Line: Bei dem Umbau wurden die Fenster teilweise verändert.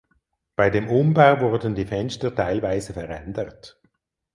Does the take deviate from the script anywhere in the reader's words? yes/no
no